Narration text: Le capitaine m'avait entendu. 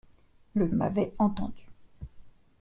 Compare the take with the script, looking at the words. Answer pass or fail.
fail